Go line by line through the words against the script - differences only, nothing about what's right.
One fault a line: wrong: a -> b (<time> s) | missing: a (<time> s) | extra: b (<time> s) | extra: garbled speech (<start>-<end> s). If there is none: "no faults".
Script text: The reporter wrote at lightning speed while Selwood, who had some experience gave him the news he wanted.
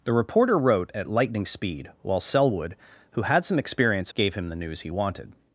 no faults